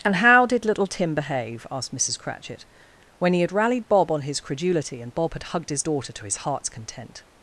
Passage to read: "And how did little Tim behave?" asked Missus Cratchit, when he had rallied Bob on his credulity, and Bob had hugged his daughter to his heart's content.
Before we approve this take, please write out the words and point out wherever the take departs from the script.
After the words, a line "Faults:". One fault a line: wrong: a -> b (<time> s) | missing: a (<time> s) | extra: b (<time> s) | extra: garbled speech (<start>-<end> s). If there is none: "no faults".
"And how did little Tim behave?" asked Missus Cratchit, when he had rallied Bob on his credulity, and Bob had hugged his daughter to his heart's content.
Faults:
no faults